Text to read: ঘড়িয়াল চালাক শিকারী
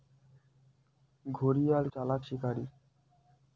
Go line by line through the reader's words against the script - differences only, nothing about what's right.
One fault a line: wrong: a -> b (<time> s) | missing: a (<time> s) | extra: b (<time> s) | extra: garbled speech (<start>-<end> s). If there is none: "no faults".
no faults